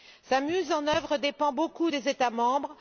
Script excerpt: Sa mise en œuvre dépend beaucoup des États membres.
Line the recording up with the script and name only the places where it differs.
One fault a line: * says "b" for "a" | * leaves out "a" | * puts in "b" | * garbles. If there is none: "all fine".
all fine